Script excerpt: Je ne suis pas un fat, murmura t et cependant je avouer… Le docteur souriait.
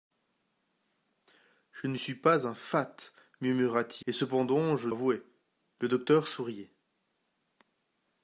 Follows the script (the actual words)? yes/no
yes